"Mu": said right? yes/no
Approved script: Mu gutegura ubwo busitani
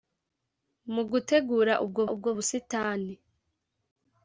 yes